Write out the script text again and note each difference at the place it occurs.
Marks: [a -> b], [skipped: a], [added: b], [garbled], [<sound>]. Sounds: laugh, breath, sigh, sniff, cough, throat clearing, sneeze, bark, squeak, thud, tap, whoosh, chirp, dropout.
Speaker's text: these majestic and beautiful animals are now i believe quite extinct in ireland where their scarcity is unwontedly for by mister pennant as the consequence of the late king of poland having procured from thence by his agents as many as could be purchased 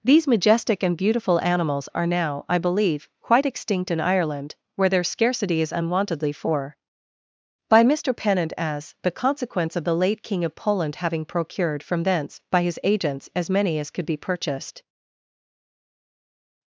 these majestic and beautiful animals are now i believe quite extinct in ireland where their scarcity is unwontedly for by mister pennant as the consequence of the late king of poland having procured from thence by his agents as many as could be purchased